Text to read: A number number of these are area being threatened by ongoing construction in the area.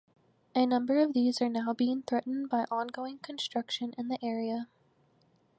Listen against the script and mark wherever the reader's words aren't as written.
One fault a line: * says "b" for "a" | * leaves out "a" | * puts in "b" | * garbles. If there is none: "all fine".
* leaves out "number"
* says "now" for "area"